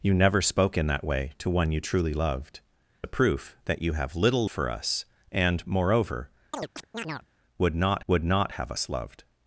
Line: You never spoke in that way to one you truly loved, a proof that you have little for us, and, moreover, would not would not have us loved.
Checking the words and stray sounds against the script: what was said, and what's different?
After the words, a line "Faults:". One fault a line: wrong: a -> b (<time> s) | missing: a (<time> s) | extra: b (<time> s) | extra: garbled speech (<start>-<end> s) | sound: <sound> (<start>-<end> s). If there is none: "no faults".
You never spoke in that way to one you truly loved, a proof that you have little for us, and, moreover, would not would not have us loved.
Faults:
sound: chirp (6.5-7.3 s)